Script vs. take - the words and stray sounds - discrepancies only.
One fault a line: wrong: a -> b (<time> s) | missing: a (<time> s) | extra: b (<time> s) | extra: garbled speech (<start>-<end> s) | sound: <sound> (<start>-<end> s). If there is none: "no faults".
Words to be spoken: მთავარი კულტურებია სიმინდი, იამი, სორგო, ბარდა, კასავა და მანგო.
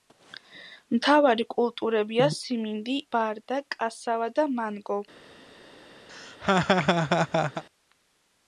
missing: იამი სორგო (3.0 s)
sound: laugh (6.1-7.6 s)